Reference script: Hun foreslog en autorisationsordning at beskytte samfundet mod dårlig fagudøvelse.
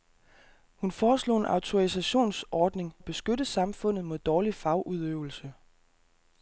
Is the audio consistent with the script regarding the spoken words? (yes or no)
yes